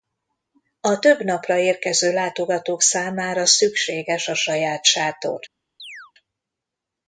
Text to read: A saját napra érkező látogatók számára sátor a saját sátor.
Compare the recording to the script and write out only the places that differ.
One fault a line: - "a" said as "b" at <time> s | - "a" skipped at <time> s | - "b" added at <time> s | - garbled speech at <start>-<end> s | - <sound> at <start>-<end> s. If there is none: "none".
- "saját" said as "több" at 1.0 s
- "sátor" said as "szükséges" at 3.5 s
- chirp at 5.8-6.1 s